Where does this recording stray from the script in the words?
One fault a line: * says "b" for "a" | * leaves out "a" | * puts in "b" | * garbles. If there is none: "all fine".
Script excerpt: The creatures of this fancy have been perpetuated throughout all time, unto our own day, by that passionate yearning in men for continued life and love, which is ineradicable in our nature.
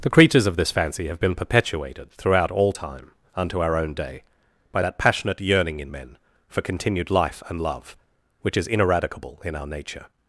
all fine